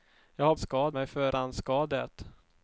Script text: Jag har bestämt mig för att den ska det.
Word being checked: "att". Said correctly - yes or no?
no